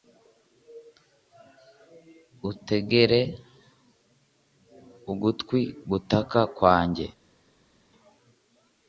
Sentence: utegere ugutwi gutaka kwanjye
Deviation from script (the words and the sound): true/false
false